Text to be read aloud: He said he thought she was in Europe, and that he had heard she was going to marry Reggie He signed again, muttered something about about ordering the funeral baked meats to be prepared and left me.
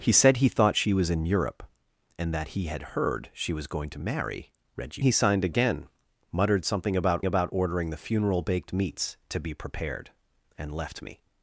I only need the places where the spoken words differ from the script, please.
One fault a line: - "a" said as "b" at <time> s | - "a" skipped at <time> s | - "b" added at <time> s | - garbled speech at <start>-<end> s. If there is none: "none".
none